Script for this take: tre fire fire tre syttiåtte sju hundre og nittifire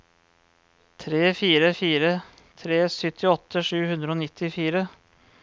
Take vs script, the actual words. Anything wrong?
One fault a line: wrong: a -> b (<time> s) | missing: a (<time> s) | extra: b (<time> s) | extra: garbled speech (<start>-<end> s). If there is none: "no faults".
no faults